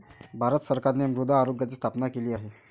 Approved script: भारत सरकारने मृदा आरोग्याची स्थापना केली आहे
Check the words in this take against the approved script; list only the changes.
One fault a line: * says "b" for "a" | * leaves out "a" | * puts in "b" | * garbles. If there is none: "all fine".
all fine